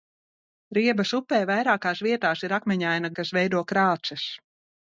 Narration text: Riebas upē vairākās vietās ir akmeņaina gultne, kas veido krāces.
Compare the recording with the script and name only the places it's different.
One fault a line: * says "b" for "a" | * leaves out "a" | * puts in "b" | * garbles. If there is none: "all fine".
* leaves out "gultne"